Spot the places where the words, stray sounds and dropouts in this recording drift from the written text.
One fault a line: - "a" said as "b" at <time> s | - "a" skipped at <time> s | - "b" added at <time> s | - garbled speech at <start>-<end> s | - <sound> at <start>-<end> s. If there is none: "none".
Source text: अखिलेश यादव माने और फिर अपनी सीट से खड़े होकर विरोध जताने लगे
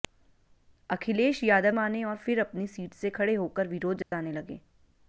- dropout at 4.0-4.1 s